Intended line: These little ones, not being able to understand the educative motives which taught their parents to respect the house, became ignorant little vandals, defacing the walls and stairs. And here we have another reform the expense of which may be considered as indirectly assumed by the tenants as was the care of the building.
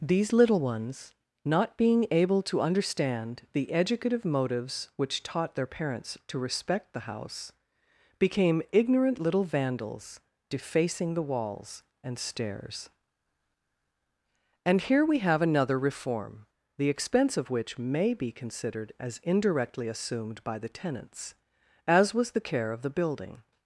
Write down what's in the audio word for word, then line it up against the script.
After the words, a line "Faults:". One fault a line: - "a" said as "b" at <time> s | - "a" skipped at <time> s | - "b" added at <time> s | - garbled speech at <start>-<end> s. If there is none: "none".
These little ones, not being able to understand the educative motives which taught their parents to respect the house, became ignorant little vandals, defacing the walls and stairs. And here we have another reform the expense of which may be considered as indirectly assumed by the tenants as was the care of the building.
Faults:
none